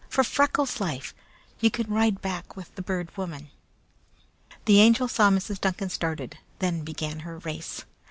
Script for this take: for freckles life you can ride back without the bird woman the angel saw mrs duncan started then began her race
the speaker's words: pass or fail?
fail